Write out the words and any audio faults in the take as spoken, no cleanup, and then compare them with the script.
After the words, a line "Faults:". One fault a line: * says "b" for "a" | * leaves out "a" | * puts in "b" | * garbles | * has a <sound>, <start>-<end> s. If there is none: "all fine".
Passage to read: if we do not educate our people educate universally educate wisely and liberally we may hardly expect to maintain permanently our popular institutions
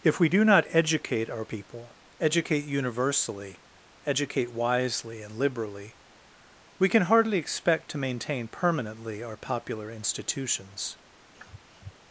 if we do not educate our people educate universally educate wisely and liberally we can hardly expect to maintain permanently our popular institutions
Faults:
* says "can" for "may"
* has a sniff, 11.3-11.9 s